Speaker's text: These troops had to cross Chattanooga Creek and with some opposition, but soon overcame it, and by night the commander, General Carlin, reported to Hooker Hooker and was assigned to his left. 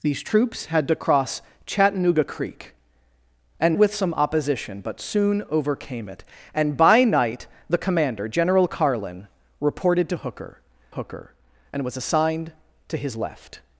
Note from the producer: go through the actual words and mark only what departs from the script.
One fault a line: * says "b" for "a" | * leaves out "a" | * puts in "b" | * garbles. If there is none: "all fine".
all fine